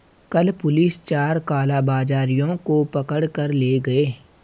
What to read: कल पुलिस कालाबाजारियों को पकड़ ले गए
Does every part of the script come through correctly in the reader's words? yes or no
no